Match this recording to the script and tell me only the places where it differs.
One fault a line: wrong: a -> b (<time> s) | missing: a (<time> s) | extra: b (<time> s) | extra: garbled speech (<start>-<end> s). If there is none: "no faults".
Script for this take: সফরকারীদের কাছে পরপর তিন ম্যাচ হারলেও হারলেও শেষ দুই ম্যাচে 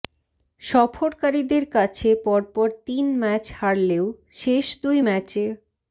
missing: হারলেও (4.0 s)